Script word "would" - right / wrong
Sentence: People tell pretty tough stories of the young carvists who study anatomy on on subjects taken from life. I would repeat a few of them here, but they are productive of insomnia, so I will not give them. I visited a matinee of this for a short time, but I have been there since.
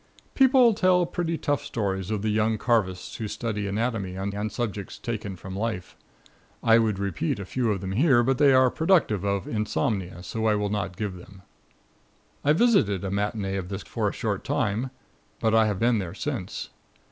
right